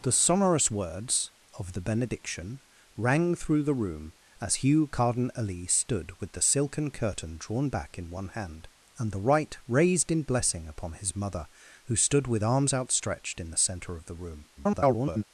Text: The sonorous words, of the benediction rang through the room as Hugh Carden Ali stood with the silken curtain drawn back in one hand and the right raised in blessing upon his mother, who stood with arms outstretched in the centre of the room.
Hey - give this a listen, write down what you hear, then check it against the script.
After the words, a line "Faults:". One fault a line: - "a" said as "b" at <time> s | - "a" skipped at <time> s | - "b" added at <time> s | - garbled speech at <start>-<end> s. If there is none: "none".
The sonorous words, of the benediction rang through the room as Hugh Carden Ali stood with the silken curtain drawn back in one hand and the right raised in blessing upon his mother, who stood with arms outstretched in the centre of the room. [garbled]
Faults:
- garbled speech at 14.6-15.2 s